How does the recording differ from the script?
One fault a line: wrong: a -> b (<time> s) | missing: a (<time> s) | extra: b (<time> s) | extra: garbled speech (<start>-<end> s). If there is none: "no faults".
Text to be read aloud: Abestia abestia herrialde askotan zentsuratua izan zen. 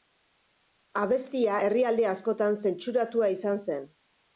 missing: abestia (1.6 s)